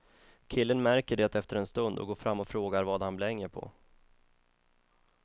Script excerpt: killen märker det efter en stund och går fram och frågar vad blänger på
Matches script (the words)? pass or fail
fail